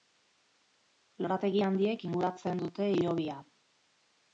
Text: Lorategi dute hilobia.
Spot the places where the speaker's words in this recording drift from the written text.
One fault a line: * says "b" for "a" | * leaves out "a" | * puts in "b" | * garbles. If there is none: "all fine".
* puts in "handiek inguratzen"